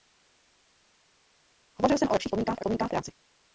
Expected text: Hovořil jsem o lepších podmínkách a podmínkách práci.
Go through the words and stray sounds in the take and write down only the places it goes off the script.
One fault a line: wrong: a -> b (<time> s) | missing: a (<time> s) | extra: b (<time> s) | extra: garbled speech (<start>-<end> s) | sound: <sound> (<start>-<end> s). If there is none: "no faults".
no faults